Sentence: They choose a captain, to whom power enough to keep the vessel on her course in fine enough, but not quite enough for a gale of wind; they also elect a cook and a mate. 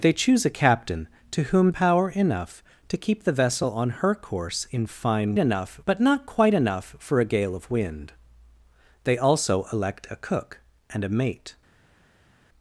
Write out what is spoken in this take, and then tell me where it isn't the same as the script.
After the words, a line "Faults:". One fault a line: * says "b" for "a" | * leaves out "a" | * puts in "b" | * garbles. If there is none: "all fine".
They choose a captain, to whom power enough to keep the vessel on her course in fine enough, but not quite enough for a gale of wind; they also elect a cook and a mate.
Faults:
all fine